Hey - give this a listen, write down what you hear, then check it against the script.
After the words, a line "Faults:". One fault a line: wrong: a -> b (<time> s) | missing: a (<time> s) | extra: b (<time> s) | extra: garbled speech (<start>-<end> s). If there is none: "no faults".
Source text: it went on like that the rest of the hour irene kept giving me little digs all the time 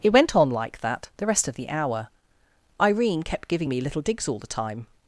it went on like that the rest of the hour irene kept giving me little digs all the time
Faults:
no faults